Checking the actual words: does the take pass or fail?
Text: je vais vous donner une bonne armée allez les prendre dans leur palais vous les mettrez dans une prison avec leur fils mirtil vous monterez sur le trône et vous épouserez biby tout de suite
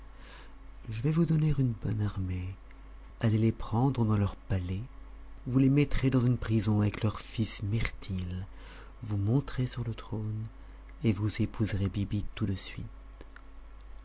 pass